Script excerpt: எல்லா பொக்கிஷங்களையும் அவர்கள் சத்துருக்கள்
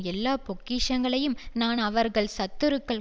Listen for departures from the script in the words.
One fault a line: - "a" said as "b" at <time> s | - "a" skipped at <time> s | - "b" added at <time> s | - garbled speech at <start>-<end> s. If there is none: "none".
- "நான்" added at 1.5 s